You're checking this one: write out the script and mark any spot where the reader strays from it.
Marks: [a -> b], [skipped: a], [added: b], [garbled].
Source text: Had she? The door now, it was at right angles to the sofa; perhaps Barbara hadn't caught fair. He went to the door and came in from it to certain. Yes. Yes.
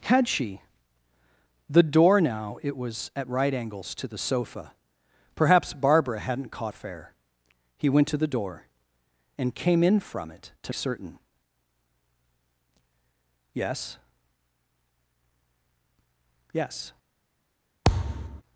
Had she? The door now, it was at right angles to the sofa; perhaps Barbara hadn't caught fair. He went to the door and came in from it to certain. Yes. Yes.